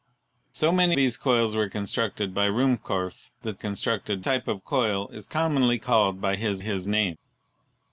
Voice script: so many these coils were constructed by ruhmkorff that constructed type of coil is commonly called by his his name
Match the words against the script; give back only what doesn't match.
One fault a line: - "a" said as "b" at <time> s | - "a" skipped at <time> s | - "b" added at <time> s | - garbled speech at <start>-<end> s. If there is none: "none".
none